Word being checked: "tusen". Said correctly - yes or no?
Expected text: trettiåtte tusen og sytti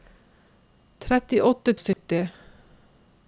no